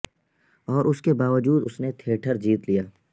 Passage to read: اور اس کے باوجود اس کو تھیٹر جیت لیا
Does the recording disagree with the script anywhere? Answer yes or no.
yes